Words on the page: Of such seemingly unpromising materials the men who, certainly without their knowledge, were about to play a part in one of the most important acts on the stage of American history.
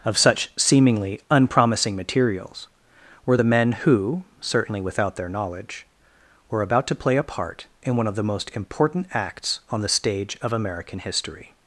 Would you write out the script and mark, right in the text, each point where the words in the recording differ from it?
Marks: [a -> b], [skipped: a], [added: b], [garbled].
Of such seemingly unpromising materials [added: were] the men who, certainly without their knowledge, were about to play a part in one of the most important acts on the stage of American history.